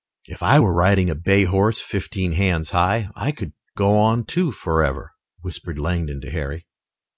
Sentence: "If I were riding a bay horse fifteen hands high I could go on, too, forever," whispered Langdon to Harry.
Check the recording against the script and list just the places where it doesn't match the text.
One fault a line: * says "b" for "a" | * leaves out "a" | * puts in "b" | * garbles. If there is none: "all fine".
all fine